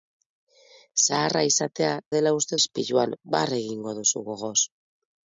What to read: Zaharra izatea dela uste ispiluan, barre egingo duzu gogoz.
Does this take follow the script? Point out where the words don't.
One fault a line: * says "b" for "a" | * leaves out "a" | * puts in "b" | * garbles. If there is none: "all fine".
all fine